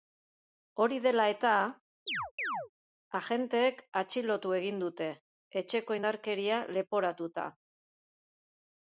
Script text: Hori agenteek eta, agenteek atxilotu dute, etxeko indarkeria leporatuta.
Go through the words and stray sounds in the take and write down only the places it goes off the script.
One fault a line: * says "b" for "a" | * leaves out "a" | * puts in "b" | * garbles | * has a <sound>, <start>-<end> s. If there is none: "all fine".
* says "dela" for "agenteek"
* has a chirp, 2.1-2.7 s
* puts in "egin"